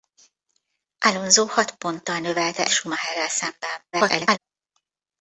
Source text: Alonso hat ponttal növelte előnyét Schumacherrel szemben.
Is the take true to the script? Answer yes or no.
no